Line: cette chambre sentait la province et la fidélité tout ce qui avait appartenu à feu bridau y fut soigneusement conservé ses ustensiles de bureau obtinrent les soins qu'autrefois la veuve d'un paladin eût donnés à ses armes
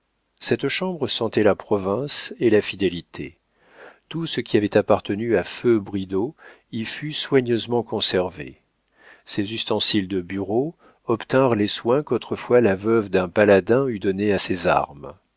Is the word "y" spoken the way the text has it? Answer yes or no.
yes